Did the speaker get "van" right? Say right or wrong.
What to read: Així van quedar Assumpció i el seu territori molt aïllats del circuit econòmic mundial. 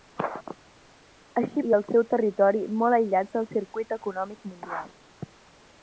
wrong